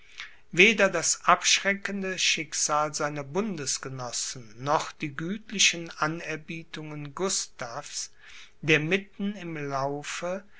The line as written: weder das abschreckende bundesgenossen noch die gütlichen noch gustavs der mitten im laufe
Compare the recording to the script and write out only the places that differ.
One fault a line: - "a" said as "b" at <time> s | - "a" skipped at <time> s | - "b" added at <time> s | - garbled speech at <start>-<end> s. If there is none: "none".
- "schicksal seiner" added at 2.2 s
- "noch" said as "anerbietungen" at 6.0 s